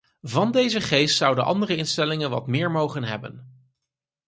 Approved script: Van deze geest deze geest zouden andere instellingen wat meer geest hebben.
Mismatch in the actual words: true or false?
true